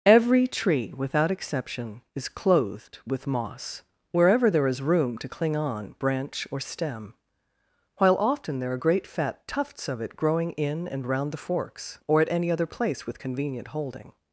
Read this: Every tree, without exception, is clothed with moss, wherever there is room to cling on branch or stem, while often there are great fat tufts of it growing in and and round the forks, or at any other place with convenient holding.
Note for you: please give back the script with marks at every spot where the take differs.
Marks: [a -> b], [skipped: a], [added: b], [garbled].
Every tree, without exception, is clothed with moss, wherever there is room to cling on branch or stem, while often there are great fat tufts of it growing in and [skipped: and] round the forks, or at any other place with convenient holding.